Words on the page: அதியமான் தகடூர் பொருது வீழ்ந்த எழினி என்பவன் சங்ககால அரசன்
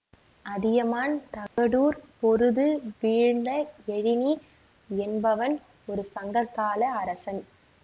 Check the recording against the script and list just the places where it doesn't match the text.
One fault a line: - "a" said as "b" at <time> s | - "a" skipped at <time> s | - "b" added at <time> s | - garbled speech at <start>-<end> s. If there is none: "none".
- "ஒரு" added at 5.9 s